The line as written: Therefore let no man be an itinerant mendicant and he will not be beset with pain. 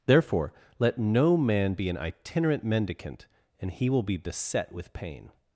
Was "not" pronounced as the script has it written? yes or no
no